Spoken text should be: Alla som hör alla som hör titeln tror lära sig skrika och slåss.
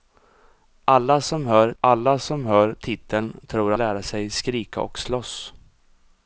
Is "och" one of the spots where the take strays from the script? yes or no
no